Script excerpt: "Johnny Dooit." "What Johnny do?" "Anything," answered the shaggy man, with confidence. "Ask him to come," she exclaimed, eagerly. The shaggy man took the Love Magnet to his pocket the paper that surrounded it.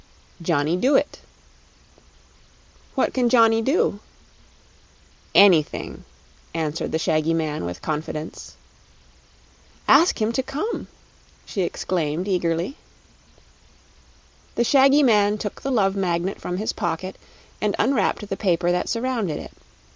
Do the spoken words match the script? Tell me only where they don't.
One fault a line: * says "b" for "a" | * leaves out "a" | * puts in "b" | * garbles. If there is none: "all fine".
* puts in "can"
* says "from" for "to"
* puts in "and unwrapped"